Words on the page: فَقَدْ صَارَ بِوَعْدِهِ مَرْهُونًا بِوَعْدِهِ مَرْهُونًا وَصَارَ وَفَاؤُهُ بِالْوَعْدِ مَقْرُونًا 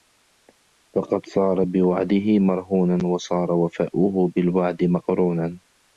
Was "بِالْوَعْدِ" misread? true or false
false